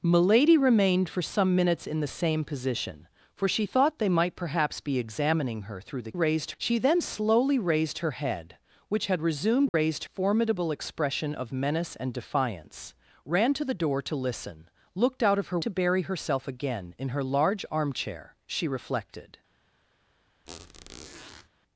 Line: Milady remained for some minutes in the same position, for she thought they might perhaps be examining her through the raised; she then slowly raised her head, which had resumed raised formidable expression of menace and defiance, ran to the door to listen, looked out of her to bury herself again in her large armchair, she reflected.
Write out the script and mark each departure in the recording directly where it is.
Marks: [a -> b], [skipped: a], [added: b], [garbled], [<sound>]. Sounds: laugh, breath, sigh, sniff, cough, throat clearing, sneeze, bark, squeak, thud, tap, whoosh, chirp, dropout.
Milady remained for some minutes in the same position, for she thought they might perhaps be examining her through the raised; she then slowly raised her head, which had resumed raised [dropout] formidable expression of menace and defiance, ran to the door to listen, looked out of her to bury herself again in her large armchair, she reflected. [squeak]